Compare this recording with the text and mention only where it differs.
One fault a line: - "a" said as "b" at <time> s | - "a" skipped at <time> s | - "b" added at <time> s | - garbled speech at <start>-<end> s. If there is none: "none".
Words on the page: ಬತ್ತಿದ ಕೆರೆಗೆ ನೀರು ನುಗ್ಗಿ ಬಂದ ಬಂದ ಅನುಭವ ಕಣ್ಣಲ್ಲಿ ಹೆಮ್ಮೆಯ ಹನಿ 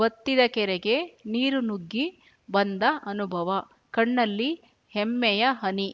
- "ಬಂದ" skipped at 2.8 s